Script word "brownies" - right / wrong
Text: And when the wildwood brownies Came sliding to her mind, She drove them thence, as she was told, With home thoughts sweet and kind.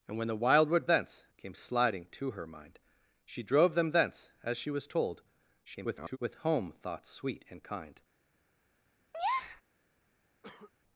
wrong